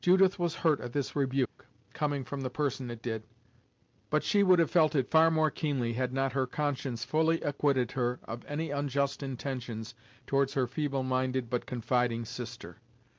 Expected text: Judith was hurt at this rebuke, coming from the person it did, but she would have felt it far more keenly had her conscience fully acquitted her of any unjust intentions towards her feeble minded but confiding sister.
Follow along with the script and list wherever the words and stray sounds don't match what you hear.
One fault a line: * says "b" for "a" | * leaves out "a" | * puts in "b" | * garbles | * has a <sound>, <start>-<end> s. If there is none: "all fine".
* has a dropout, 1.5-1.6 s
* puts in "not"